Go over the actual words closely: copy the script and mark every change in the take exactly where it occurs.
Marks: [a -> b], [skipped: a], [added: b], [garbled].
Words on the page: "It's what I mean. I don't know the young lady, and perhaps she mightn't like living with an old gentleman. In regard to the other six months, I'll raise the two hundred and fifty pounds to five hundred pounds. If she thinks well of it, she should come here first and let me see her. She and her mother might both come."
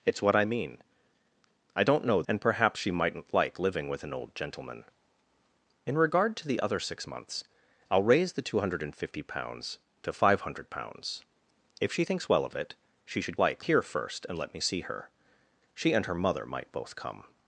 "It's what I mean. I don't know [skipped: the young lady,] and perhaps she mightn't like living with an old gentleman. In regard to the other six months, I'll raise the two hundred and fifty pounds to five hundred pounds. If she thinks well of it, she should [come -> like] here first and let me see her. She and her mother might both come."